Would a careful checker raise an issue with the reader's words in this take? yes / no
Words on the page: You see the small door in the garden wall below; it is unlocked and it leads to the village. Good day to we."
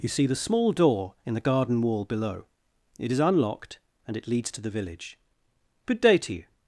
yes